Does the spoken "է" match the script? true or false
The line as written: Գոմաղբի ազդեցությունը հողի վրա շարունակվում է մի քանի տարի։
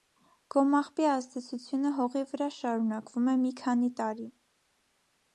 true